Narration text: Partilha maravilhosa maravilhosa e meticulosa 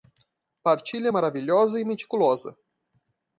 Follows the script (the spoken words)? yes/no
no